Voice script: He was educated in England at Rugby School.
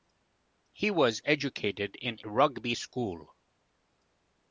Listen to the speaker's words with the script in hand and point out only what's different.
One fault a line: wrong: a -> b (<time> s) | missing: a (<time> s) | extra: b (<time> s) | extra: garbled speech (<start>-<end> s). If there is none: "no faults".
missing: England at (2.2 s)